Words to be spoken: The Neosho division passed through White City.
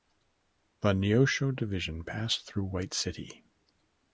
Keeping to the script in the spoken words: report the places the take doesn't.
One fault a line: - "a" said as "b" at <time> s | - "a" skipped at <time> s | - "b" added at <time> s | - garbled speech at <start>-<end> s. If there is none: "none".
none